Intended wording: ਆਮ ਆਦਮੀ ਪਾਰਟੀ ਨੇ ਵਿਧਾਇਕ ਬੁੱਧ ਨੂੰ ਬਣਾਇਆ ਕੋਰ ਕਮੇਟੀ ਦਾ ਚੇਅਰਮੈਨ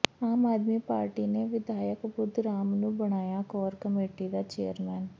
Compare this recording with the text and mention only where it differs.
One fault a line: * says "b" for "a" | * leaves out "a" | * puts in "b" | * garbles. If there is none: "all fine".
* puts in "ਰਾਮ"